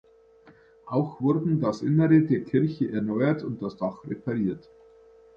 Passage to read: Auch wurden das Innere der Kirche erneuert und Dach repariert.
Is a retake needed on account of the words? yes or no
yes